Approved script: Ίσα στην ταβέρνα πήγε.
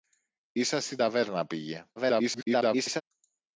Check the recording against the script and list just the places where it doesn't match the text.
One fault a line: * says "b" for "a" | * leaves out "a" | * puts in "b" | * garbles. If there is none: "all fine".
* garbles